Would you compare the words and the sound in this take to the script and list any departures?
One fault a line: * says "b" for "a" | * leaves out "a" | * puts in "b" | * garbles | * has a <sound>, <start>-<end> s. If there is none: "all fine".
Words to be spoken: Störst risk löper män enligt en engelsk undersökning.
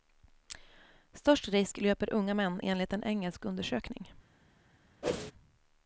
* puts in "unga"
* has a whoosh, 5.0-5.3 s